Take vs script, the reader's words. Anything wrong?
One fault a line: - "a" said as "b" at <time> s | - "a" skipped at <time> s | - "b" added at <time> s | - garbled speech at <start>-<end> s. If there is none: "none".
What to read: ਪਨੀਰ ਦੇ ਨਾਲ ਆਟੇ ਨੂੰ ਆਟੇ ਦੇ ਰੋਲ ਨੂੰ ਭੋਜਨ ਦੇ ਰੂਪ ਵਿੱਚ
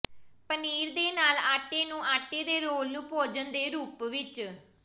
none